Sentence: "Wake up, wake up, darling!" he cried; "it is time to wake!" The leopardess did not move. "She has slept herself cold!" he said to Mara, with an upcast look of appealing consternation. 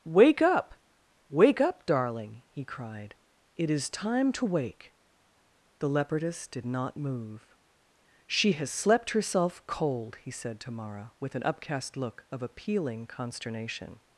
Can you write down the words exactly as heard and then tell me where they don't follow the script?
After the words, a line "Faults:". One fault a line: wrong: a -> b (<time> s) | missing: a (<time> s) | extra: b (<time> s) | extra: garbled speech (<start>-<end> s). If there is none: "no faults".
"Wake up, wake up, darling!" he cried; "it is time to wake!" The leopardess did not move. "She has slept herself cold!" he said to Mara, with an upcast look of appealing consternation.
Faults:
no faults